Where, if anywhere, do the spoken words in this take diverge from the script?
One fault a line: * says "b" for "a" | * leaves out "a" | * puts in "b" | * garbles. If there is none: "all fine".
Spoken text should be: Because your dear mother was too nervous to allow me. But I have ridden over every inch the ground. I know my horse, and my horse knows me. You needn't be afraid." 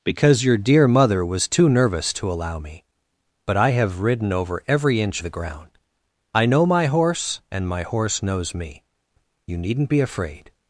all fine